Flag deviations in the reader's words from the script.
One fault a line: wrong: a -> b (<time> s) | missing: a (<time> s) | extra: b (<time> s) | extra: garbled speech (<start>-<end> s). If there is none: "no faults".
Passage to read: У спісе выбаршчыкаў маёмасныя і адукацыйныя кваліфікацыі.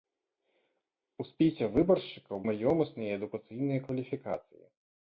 no faults